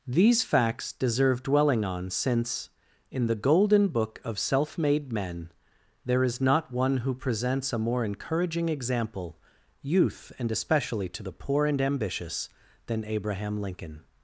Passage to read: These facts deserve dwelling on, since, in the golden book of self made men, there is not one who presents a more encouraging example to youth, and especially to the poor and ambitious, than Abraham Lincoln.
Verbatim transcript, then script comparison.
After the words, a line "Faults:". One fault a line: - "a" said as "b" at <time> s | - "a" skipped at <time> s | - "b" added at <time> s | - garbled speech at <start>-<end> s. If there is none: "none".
These facts deserve dwelling on, since, in the golden book of self made men, there is not one who presents a more encouraging example youth, and especially to the poor and ambitious, than Abraham Lincoln.
Faults:
- "to" skipped at 9.4 s